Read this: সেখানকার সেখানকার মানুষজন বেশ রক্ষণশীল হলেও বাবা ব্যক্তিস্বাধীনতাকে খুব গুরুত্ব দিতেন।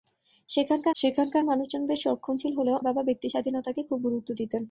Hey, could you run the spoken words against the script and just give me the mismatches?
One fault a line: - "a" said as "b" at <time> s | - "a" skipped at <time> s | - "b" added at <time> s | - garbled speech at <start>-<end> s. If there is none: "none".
none